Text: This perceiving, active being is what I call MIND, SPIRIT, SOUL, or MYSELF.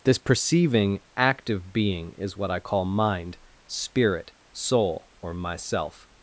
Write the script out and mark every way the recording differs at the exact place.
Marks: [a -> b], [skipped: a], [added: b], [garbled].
This perceiving, active being is what I call MIND, SPIRIT, SOUL, or MYSELF.